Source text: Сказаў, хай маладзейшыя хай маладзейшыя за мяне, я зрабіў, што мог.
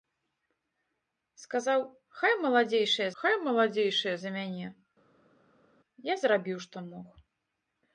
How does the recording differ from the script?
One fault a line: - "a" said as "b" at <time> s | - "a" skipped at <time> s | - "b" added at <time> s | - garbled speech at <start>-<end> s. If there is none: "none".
none